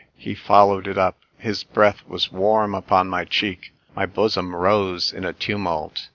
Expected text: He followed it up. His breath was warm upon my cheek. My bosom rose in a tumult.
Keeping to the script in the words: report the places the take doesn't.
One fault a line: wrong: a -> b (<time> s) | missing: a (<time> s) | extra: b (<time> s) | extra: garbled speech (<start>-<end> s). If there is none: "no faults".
no faults